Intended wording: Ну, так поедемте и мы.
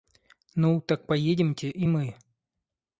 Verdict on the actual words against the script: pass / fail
pass